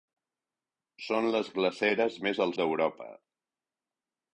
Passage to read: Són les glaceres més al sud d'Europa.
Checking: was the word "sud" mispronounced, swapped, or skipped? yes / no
yes